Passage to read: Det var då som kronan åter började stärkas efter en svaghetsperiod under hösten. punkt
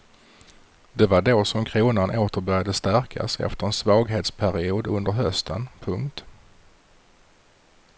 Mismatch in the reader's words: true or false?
false